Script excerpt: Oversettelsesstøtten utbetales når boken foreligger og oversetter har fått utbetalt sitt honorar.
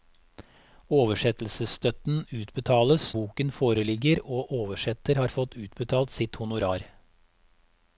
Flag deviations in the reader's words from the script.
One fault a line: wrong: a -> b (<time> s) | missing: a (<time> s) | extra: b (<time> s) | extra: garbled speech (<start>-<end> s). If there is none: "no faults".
missing: når (3.0 s)